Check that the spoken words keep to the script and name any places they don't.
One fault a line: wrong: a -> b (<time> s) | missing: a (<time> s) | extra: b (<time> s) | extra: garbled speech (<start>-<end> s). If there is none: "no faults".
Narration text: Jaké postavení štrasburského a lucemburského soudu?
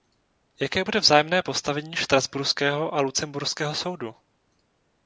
extra: bude vzájemné (0.8 s)